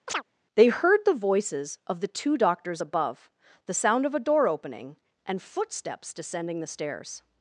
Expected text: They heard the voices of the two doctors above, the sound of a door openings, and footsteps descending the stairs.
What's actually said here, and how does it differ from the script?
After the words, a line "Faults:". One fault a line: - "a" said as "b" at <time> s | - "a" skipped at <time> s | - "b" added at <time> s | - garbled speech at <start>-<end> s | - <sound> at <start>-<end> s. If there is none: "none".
They heard the voices of the two doctors above, the sound of a door opening, and footsteps descending the stairs.
Faults:
- chirp at 0.1-0.2 s
- "openings" said as "opening" at 4.5 s